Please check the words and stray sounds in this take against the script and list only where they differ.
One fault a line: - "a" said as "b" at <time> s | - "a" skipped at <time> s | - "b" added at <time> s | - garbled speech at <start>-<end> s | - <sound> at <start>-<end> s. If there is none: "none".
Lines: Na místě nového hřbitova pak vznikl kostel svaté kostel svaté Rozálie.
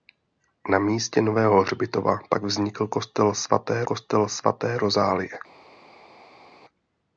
none